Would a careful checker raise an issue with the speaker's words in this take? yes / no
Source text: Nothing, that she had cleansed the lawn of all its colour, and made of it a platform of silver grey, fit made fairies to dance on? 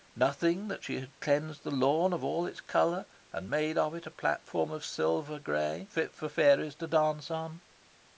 yes